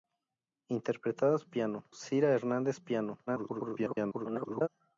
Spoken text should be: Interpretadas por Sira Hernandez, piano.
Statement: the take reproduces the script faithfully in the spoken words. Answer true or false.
false